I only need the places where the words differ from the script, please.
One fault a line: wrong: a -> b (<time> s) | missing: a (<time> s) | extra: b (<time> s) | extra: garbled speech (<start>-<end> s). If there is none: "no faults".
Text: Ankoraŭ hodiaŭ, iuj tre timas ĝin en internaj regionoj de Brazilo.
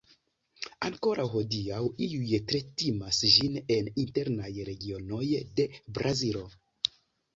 no faults